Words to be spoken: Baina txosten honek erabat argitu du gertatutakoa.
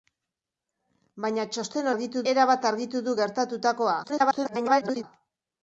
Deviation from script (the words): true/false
true